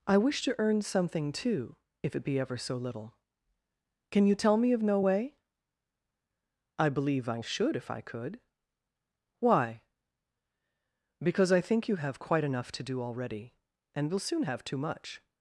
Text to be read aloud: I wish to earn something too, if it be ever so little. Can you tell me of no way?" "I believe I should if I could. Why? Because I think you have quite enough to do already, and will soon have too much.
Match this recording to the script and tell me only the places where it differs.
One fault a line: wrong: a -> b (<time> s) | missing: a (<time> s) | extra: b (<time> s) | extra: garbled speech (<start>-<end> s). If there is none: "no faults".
no faults